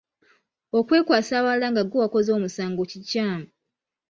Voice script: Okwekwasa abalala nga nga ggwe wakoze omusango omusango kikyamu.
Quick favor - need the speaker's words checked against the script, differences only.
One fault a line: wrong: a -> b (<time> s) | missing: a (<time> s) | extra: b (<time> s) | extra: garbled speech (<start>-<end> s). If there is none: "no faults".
missing: nga (1.8 s)
missing: omusango (2.8 s)